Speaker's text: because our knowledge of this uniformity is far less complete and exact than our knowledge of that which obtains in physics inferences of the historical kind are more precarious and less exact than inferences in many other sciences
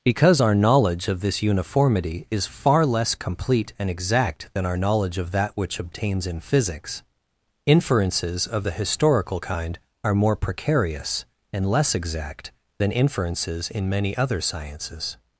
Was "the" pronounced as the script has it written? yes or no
yes